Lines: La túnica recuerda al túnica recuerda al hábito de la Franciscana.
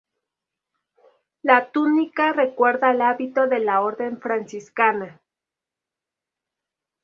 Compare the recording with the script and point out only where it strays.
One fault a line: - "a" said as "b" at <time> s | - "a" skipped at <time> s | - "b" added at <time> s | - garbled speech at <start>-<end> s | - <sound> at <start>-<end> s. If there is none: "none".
- "túnica recuerda al" skipped at 3.0 s
- "Orden" added at 3.8 s